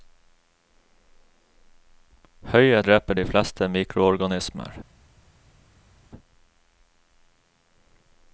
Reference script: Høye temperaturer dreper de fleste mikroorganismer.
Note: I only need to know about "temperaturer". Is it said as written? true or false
false